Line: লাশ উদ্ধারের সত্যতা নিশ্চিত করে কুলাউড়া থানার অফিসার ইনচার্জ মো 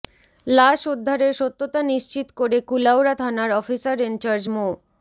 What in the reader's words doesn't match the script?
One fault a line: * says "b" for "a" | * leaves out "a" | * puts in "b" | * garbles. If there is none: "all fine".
all fine